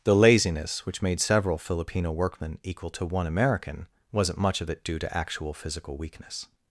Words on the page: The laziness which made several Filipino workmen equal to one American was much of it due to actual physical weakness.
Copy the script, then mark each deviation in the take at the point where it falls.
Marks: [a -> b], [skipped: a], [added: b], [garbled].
The laziness which made several Filipino workmen equal to one American [was -> wasn't] much of it due to actual physical weakness.